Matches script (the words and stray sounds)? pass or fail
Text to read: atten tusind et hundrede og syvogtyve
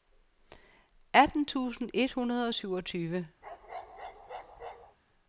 fail